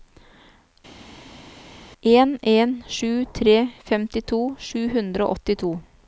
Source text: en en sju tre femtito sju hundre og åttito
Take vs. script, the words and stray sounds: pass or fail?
pass